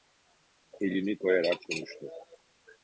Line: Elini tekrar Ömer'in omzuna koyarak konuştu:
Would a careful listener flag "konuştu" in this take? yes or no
no